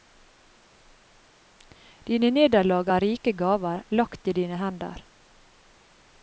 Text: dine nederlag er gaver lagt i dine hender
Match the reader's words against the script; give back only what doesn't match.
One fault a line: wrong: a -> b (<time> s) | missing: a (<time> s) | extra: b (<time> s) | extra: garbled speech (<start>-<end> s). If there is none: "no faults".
extra: rike (3.0 s)